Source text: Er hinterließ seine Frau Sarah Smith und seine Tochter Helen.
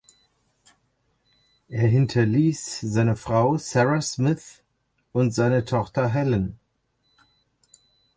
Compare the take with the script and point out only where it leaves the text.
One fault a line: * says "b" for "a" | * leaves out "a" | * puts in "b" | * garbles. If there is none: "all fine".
all fine